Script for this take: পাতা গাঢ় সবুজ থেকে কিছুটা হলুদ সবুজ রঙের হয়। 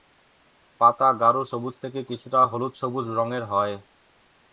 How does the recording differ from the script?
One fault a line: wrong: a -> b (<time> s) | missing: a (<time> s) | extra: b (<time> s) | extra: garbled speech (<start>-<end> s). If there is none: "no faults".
no faults